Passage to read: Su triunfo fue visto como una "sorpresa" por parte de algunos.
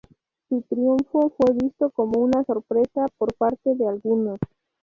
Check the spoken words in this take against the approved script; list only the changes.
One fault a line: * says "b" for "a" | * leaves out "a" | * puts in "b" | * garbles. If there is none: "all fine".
all fine